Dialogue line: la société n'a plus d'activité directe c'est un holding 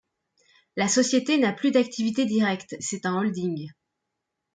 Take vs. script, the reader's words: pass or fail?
pass